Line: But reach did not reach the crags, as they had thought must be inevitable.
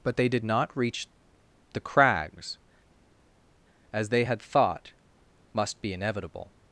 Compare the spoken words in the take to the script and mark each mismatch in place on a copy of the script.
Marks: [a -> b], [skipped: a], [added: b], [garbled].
But [reach -> they] did not reach the crags, as they had thought must be inevitable.